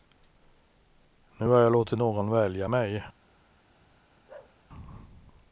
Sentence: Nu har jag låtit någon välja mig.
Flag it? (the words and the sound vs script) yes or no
yes